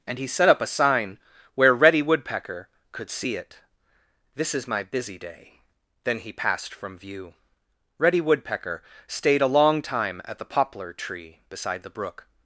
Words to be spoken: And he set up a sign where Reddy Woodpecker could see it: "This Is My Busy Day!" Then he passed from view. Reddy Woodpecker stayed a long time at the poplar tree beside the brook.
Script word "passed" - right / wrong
right